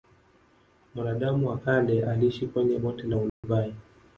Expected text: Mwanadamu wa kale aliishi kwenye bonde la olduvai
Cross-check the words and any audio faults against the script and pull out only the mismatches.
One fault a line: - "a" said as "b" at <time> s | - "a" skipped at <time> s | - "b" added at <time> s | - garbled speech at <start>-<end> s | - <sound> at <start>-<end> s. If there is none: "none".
- dropout at 3.3-3.4 s